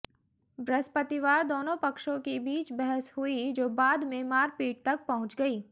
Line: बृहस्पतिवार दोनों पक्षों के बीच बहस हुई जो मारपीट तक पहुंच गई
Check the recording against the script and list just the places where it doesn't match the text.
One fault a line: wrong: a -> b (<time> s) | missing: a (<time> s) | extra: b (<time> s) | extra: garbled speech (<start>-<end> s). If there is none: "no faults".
extra: बाद में (3.7 s)